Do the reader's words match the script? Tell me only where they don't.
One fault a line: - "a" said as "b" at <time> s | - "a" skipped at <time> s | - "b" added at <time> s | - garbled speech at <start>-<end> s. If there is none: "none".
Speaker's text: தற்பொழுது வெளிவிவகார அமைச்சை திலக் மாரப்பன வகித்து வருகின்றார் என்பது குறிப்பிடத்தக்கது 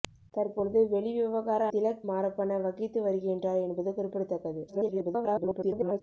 - "அமைச்சை" skipped at 1.7 s
- garbled speech at 4.7-6.0 s